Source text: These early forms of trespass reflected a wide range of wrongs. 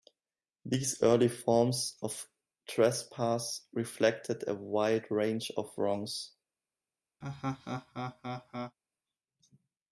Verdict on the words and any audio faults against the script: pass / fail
fail